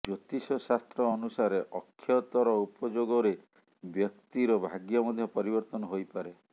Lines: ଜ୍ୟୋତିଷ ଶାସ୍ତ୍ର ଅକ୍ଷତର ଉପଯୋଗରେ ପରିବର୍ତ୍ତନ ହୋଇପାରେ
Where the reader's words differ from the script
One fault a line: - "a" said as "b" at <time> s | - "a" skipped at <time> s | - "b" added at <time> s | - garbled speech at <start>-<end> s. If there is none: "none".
- "ଅନୁସାରେ" added at 1.1 s
- "ବ୍ୟକ୍ତିର ଭାଗ୍ୟ ମଧ୍ୟ" added at 3.8 s